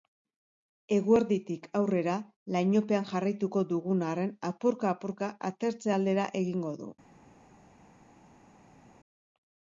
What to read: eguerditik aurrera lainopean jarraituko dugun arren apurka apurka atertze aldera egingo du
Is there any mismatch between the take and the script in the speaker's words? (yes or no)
no